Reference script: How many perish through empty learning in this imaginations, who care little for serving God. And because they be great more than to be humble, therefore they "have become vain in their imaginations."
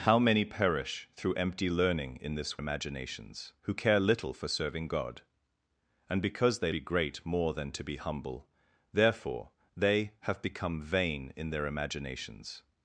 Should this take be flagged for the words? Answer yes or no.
no